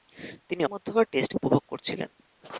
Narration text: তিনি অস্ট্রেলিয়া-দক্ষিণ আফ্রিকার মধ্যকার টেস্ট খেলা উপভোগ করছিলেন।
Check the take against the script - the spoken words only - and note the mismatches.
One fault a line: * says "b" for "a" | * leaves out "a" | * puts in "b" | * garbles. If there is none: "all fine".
* leaves out "অস্ট্রেলিয়া-দক্ষিণ আফ্রিকার"
* leaves out "খেলা"